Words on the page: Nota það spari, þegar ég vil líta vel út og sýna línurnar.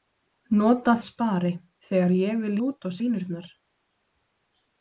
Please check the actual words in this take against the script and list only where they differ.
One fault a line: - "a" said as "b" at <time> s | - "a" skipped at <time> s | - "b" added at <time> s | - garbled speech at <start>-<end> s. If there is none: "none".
- "það" skipped at 0.9 s
- "líta vel" skipped at 2.5 s
- "sýna" skipped at 3.0 s